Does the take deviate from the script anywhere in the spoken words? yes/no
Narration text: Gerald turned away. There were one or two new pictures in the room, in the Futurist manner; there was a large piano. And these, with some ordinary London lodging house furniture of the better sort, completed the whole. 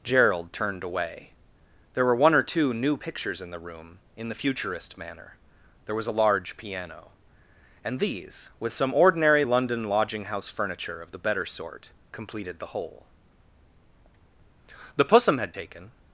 yes